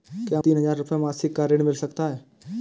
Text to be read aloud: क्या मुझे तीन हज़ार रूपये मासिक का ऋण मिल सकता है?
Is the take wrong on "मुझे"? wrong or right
wrong